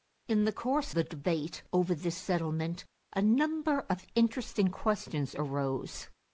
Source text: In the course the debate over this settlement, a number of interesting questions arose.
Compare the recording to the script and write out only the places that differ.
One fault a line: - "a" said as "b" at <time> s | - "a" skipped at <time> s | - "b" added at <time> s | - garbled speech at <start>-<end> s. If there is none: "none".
none